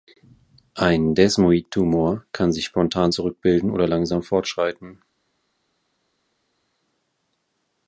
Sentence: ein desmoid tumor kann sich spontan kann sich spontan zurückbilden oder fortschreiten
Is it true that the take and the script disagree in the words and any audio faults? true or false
true